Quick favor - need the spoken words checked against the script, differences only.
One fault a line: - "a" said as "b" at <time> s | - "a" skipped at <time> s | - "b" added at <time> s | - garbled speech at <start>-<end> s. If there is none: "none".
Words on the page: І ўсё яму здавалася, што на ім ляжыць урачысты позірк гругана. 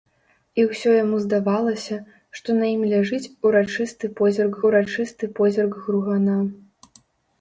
- "урачысты позірк" added at 4.7 s